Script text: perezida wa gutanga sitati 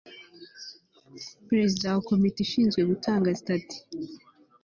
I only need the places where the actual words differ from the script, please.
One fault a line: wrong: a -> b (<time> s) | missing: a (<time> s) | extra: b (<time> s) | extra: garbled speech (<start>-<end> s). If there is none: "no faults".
extra: komite ishinzwe (2.1 s)